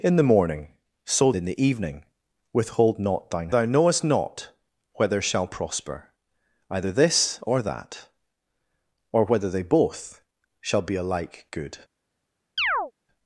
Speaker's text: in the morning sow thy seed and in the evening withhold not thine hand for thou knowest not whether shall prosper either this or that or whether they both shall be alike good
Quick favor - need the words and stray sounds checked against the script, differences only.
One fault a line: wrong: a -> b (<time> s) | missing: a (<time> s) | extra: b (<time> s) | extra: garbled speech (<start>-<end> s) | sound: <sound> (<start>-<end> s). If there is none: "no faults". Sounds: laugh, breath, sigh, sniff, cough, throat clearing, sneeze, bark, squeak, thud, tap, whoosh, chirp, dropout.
missing: thy seed and (1.3 s)
missing: hand for (3.5 s)
sound: chirp (12.6-12.9 s)